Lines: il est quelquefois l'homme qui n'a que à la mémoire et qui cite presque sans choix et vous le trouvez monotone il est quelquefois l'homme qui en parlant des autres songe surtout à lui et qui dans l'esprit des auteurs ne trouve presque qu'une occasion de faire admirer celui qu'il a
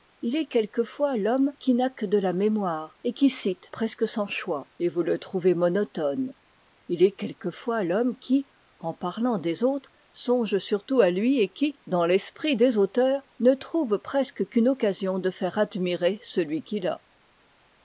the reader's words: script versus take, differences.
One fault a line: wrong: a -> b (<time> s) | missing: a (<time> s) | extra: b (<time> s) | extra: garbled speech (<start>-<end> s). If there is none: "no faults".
wrong: à -> de (2.1 s)